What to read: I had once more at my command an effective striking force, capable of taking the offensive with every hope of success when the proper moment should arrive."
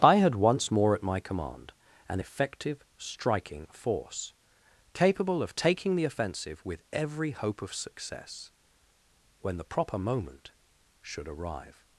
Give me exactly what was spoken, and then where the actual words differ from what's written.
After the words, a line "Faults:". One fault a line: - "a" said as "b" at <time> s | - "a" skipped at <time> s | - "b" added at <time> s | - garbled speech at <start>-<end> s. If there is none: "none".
I had once more at my command an effective striking force, capable of taking the offensive with every hope of success when the proper moment should arrive."
Faults:
none